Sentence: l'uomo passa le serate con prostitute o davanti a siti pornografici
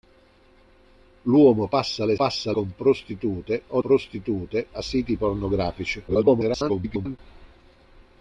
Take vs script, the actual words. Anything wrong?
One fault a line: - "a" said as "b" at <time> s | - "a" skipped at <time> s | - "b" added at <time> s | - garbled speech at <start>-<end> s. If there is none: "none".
- "serate" said as "passa" at 2.1 s
- "davanti" said as "prostitute" at 3.8 s
- garbled speech at 6.1-7.2 s